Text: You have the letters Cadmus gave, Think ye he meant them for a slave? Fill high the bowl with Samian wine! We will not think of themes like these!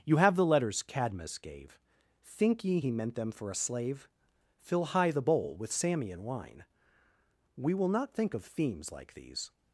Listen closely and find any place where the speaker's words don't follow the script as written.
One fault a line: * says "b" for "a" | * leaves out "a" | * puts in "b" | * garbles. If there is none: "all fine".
all fine